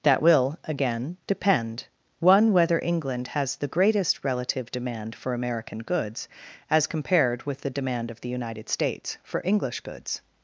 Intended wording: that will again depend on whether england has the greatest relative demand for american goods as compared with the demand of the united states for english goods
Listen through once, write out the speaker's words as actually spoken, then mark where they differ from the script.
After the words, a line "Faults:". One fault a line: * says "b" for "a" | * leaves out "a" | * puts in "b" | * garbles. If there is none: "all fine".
that will again depend one whether england has the greatest relative demand for american goods as compared with the demand of the united states for english goods
Faults:
* says "one" for "on"